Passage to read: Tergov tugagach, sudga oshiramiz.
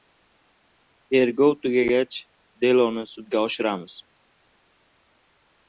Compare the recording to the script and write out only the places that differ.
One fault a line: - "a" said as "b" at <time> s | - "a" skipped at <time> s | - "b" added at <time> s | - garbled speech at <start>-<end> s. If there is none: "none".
- "deloni" added at 2.6 s